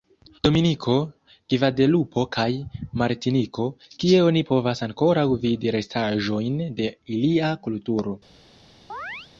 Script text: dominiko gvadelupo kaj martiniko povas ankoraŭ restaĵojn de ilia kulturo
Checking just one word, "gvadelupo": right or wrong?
right